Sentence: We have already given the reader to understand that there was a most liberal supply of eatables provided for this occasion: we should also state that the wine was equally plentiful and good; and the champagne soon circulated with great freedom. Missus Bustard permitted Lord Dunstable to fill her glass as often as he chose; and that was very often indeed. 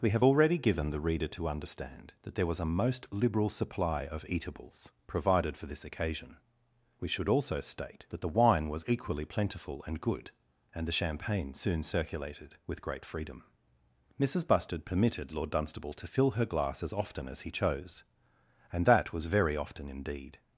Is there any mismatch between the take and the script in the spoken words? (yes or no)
no